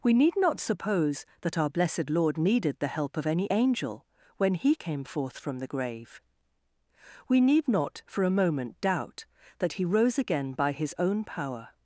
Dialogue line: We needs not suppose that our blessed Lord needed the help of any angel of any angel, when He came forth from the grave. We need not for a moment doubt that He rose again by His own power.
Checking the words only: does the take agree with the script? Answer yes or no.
no